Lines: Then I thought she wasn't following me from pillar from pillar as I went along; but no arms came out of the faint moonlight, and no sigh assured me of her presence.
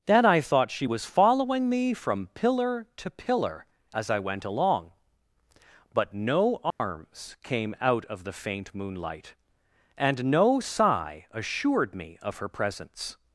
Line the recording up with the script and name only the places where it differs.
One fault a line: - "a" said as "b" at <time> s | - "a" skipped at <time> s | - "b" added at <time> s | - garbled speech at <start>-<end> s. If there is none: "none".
- "wasn't" said as "was" at 0.8 s
- "from" said as "to" at 3.0 s